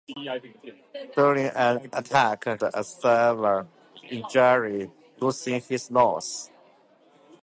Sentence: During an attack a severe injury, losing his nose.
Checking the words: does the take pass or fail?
pass